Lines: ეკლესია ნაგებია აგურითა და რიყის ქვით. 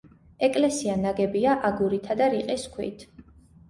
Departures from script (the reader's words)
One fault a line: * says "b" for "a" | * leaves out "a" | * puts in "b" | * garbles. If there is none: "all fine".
all fine